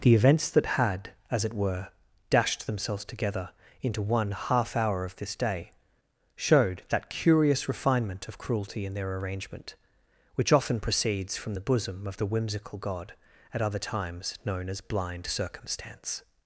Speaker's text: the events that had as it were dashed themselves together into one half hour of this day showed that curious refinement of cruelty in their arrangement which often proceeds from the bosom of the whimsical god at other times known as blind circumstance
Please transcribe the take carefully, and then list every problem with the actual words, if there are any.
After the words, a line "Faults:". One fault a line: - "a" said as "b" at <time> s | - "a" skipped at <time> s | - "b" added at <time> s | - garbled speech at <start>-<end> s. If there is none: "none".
the events that had as it were dashed themselves together into one half hour of this day showed that curious refinement of cruelty in their arrangement which often proceeds from the bosom of the whimsical god at other times known as blind circumstance
Faults:
none